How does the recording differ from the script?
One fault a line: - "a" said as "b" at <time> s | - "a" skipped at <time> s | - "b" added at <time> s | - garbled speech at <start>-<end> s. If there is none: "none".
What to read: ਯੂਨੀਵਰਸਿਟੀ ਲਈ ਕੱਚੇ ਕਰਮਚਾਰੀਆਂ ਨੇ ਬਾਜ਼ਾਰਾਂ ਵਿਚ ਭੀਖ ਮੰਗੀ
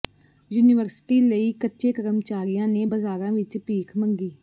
none